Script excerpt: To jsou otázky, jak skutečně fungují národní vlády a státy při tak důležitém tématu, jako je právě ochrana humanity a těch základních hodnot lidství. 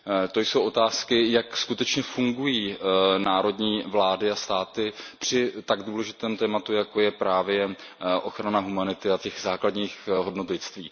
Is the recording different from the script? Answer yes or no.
no